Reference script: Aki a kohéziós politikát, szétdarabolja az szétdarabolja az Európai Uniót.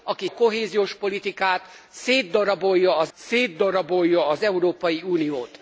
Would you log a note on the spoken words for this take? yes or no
no